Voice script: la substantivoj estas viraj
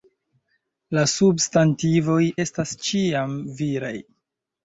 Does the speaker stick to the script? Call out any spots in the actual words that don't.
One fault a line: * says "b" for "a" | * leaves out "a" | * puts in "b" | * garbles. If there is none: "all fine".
* puts in "ĉiam"